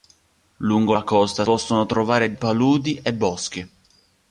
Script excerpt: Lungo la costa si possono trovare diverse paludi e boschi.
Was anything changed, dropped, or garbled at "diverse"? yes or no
yes